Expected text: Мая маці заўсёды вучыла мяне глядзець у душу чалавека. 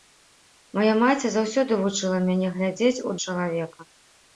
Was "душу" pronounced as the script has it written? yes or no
no